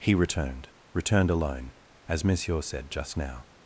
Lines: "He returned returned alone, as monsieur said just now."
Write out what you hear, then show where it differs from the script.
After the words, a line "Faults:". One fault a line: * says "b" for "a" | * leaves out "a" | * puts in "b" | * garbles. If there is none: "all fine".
"He returned returned alone, as monsieur said just now."
Faults:
all fine